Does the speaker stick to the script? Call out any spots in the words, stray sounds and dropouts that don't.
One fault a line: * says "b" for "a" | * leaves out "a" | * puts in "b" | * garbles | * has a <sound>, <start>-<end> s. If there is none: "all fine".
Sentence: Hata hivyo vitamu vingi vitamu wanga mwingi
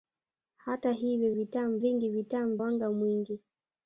all fine